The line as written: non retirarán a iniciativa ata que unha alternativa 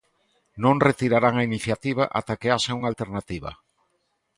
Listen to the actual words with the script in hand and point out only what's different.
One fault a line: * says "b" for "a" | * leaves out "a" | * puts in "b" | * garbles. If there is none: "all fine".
* puts in "haxa"